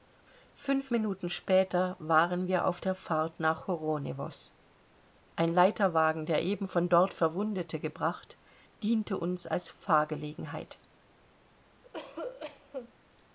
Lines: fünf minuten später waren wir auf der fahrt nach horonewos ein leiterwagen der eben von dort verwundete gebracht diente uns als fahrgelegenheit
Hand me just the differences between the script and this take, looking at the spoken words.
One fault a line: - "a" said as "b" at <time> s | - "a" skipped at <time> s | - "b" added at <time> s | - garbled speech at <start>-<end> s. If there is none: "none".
none